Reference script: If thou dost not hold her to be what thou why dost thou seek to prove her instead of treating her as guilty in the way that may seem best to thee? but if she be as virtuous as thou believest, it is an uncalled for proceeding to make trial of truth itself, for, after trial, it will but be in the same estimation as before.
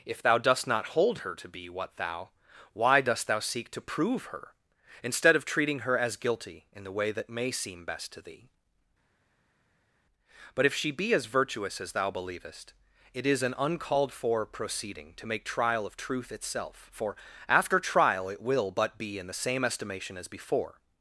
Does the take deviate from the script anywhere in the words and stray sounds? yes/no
no